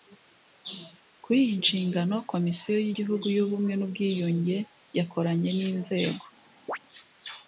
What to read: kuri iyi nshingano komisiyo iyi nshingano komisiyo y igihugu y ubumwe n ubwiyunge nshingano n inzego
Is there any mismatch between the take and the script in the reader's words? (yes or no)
yes